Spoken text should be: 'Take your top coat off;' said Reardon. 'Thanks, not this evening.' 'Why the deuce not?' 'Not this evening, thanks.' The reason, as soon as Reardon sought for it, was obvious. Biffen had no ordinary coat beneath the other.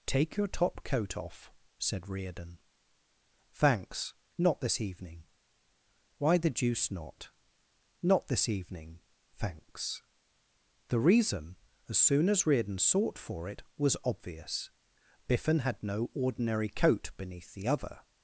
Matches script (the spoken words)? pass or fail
pass